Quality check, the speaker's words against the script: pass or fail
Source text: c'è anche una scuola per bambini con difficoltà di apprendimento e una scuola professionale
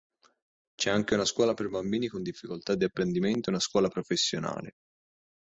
pass